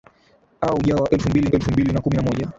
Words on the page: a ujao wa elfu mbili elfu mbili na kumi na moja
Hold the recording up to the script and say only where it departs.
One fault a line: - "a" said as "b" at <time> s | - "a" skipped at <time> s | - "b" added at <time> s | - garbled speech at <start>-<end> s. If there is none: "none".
none